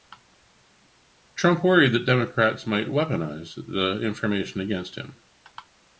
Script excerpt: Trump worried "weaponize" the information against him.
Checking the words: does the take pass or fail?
fail